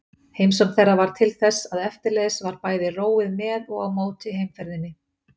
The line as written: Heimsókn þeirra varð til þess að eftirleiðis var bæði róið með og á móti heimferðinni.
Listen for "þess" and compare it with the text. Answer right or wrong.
right